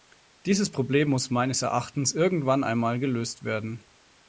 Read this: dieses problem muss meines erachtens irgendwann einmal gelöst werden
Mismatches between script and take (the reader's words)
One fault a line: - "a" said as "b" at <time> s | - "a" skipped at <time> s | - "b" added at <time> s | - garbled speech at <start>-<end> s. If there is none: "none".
none